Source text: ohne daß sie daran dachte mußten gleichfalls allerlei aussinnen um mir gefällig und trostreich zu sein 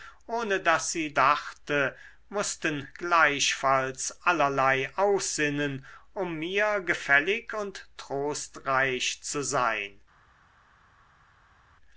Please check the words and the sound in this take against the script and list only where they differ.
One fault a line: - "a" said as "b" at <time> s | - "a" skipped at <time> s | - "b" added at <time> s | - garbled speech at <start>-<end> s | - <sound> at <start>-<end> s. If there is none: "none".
- "daran" skipped at 1.1 s